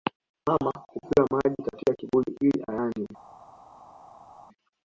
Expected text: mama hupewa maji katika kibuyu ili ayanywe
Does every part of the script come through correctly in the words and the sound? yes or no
yes